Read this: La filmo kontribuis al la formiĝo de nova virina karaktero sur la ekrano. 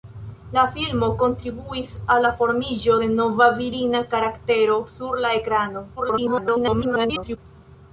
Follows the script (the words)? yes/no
no